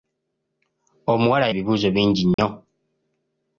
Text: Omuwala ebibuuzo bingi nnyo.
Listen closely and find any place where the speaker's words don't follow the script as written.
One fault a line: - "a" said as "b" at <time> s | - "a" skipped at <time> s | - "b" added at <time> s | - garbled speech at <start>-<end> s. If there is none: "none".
none